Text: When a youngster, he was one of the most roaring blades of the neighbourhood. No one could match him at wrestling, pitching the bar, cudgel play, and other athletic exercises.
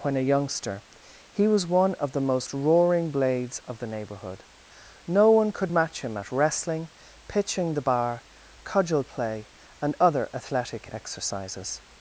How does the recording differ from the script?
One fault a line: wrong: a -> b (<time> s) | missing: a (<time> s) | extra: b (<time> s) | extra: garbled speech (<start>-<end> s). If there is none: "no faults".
no faults